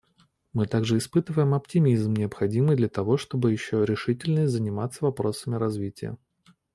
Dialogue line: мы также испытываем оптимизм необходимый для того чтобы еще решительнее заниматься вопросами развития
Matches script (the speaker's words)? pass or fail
pass